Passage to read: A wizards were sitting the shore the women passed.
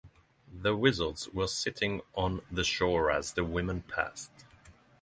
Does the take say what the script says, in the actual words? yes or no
no